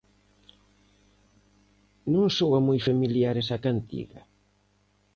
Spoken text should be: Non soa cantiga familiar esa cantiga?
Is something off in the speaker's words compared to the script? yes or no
yes